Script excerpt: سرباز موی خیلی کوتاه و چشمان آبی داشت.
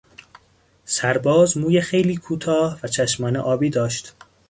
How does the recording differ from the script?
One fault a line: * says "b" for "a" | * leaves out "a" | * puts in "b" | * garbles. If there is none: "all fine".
all fine